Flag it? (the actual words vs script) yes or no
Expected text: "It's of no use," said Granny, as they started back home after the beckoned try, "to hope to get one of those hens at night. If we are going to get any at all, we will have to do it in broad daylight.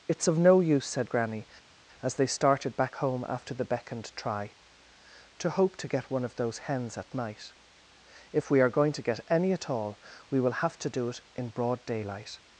no